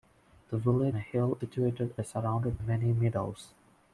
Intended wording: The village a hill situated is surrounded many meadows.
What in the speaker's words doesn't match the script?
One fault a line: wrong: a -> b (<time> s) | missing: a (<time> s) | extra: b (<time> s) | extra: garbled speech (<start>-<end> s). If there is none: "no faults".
no faults